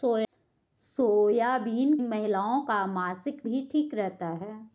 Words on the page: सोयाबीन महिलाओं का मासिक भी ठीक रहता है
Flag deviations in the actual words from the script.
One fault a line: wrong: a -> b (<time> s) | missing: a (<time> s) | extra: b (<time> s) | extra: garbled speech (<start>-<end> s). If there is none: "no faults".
no faults